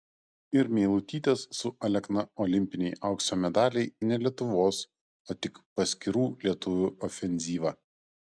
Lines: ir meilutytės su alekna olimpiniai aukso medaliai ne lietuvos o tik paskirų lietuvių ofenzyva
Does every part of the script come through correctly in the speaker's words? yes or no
yes